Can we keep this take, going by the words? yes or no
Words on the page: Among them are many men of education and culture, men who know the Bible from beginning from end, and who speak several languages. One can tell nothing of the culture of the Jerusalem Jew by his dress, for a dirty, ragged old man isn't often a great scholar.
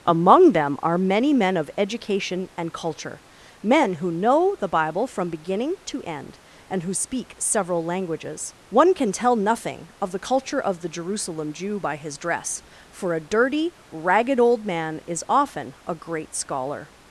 no